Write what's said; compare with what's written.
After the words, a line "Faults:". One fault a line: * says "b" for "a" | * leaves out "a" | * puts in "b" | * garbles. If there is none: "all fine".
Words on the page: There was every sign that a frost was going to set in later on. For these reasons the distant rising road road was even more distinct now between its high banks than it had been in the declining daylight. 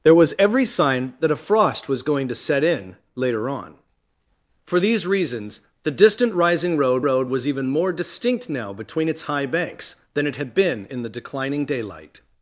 There was every sign that a frost was going to set in later on. For these reasons the distant rising road road was even more distinct now between its high banks than it had been in the declining daylight.
Faults:
all fine